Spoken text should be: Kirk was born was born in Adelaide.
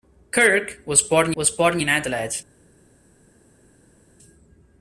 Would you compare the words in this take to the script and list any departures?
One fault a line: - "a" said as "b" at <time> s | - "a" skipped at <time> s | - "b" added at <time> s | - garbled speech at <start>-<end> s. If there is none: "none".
none